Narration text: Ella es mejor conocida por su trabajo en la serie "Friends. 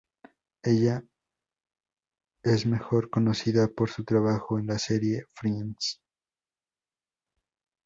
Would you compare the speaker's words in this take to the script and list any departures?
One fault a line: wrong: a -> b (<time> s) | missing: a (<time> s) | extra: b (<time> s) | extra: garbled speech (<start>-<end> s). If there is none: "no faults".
no faults